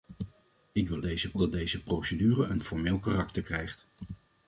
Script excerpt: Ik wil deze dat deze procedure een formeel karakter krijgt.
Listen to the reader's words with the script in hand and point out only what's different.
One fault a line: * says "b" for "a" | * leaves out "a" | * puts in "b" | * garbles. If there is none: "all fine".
all fine